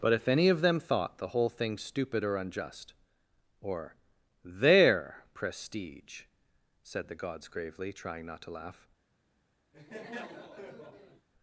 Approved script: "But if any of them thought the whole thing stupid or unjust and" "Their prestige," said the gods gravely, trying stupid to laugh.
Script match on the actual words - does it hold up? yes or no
no